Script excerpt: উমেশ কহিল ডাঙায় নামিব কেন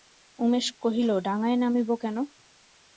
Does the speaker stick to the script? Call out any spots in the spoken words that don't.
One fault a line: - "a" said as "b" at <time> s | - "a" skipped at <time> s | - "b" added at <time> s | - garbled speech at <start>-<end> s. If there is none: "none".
none